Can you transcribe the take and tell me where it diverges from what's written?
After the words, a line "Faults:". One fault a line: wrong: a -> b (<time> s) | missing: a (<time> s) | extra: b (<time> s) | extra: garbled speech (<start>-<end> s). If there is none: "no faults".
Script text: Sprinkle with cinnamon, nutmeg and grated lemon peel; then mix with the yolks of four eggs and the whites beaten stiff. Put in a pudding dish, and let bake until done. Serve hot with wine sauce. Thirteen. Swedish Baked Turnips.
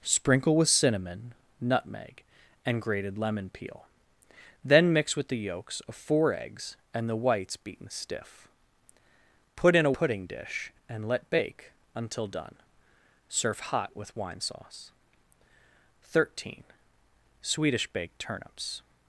Sprinkle with cinnamon, nutmeg and grated lemon peel; then mix with the yolks of four eggs and the whites beaten stiff. Put in a pudding dish, and let bake until done. Serve hot with wine sauce. Thirteen. Swedish Baked Turnips.
Faults:
no faults